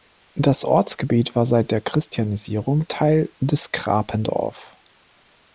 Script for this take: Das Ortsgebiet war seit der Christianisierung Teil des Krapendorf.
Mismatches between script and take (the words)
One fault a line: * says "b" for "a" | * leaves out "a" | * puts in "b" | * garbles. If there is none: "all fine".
all fine